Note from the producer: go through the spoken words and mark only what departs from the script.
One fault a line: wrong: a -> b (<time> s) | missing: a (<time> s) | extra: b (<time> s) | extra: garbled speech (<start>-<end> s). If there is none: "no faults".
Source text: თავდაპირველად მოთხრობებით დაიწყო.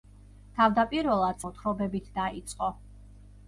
no faults